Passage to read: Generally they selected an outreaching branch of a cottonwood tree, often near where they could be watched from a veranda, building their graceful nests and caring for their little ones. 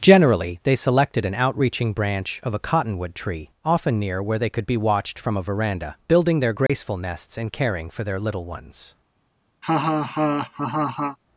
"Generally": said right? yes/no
yes